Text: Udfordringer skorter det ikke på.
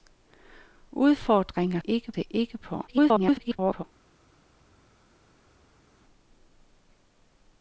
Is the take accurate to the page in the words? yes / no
no